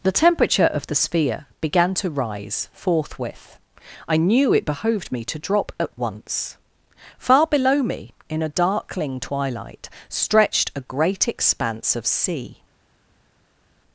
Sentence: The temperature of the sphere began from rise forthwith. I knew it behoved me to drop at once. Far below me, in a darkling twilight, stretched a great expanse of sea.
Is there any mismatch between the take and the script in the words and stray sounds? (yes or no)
yes